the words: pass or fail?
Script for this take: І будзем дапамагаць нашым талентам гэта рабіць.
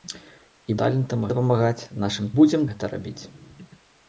fail